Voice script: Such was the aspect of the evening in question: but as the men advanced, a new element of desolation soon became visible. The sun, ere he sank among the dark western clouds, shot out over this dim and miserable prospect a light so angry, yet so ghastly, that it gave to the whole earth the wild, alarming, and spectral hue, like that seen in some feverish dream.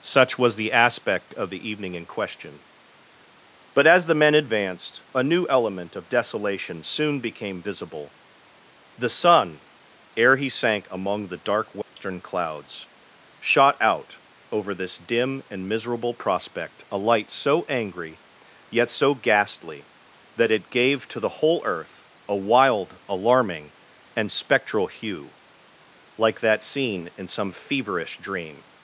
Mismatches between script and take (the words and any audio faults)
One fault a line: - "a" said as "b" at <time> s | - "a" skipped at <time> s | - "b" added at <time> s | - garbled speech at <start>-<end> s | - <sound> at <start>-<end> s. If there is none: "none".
- dropout at 11.8-12.0 s
- "the" said as "a" at 22.3 s